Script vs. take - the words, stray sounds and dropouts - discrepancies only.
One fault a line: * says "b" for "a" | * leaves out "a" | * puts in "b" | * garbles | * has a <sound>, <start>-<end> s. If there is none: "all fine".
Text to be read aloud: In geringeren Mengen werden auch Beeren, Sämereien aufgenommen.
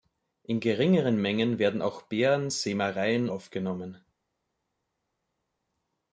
all fine